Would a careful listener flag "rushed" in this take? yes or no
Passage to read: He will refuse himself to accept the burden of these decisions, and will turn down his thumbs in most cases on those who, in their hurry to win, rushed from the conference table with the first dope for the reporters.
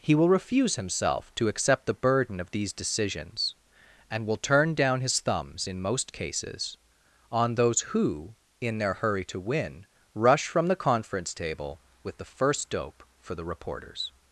yes